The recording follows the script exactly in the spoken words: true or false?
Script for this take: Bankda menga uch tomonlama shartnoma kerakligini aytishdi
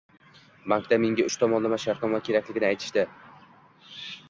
true